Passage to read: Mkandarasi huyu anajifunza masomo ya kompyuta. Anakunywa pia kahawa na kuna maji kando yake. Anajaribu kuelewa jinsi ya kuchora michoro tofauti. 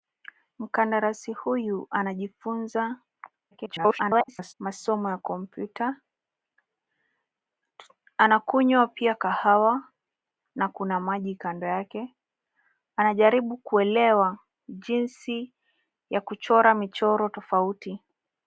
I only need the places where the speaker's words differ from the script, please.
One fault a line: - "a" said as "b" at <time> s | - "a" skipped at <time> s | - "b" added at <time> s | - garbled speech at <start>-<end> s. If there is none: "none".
- garbled speech at 3.5-4.5 s